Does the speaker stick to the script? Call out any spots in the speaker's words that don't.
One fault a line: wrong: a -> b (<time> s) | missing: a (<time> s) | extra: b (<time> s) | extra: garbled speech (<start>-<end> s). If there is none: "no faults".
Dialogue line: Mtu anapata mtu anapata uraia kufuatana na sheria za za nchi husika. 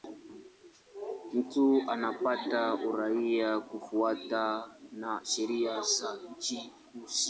missing: mtu anapata (2.7 s)
missing: za (6.2 s)